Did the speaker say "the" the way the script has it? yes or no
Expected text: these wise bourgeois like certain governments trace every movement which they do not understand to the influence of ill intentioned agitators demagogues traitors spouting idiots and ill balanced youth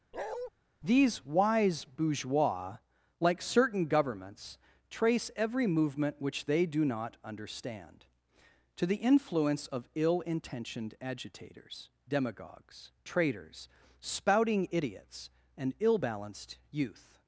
yes